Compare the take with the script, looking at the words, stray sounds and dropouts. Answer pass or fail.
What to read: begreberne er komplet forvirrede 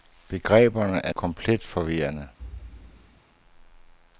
fail